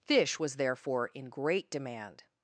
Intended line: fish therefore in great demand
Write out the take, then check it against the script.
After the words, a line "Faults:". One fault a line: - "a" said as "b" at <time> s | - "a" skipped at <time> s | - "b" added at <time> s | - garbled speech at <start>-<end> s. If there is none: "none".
fish was therefore in great demand
Faults:
- "was" added at 0.4 s